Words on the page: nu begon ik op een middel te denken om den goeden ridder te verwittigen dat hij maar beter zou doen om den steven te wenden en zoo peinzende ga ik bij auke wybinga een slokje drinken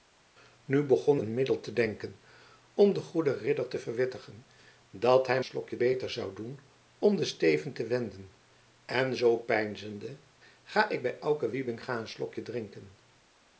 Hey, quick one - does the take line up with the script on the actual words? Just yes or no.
no